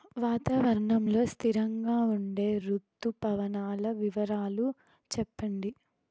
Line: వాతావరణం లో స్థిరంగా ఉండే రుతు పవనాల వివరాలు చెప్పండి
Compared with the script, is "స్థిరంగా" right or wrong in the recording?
right